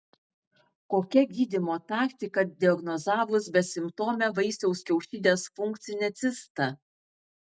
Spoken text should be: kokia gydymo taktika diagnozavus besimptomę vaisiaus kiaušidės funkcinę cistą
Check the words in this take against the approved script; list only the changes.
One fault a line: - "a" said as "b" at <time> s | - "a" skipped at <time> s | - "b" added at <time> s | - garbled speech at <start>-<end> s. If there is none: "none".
none